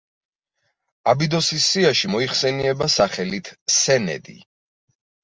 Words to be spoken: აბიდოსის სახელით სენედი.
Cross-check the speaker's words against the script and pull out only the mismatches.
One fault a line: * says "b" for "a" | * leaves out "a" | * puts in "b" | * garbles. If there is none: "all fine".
* puts in "სიაში მოიხსენიება"